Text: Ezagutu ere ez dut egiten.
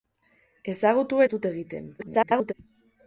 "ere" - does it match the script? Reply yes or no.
no